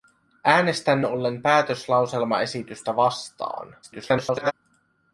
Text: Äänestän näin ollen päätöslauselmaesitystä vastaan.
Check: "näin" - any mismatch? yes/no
yes